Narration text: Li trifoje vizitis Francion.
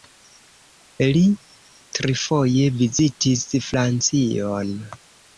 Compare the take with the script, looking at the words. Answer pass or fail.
pass